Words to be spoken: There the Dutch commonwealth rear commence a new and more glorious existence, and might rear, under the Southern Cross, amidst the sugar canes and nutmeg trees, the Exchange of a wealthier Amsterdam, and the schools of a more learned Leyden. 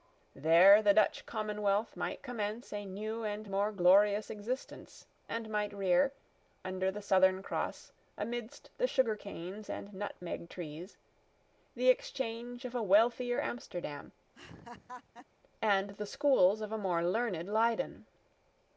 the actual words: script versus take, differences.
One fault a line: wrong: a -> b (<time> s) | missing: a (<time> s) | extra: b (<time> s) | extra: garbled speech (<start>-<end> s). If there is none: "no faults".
wrong: rear -> might (1.9 s)